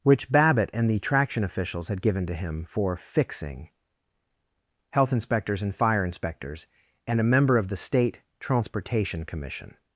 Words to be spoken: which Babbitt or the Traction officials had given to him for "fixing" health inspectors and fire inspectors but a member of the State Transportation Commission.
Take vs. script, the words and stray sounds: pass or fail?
fail